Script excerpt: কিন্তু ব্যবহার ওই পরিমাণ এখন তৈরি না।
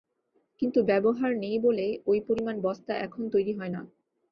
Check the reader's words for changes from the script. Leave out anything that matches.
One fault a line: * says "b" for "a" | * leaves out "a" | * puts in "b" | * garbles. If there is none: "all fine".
* puts in "নেই বলে"
* puts in "বস্তা"
* puts in "হয়"